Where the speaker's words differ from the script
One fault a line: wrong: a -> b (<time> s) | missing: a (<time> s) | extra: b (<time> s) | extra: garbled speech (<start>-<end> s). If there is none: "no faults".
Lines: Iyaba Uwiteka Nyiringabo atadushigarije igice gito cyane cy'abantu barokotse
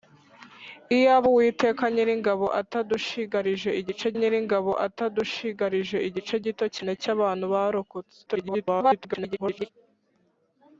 extra: Nyiringabo atadushigarije igice (4.2 s)
extra: garbled speech (8.3-9.7 s)